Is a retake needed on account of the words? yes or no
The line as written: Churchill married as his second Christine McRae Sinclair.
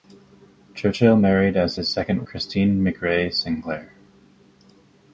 no